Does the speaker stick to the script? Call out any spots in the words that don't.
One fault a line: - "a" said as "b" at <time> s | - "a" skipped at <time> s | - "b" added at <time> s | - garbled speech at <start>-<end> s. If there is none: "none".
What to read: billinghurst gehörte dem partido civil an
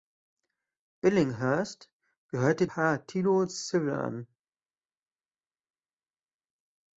- "dem" skipped at 2.7 s